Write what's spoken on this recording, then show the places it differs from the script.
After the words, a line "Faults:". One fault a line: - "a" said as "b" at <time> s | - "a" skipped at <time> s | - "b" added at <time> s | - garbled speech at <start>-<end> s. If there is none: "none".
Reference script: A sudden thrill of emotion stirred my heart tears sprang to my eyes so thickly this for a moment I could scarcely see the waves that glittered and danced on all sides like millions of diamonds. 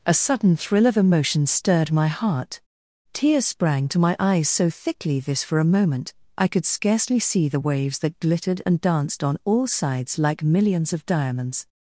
A sudden thrill of emotion stirred my heart tears sprang to my eyes so thickly this for a moment I could scarcely see the waves that glittered and danced on all sides like millions of diamonds.
Faults:
none